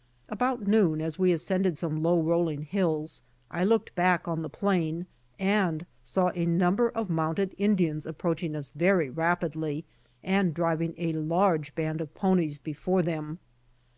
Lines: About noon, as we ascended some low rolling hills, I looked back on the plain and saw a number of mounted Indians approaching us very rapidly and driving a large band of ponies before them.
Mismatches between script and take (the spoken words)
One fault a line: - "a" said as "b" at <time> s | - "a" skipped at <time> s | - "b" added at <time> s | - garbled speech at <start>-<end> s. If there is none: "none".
none